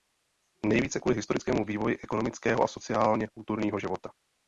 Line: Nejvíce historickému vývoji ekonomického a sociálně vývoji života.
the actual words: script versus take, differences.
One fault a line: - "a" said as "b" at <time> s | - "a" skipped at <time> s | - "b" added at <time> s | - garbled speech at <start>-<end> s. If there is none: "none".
- "kvůli" added at 1.0 s
- "vývoji" said as "kulturního" at 3.3 s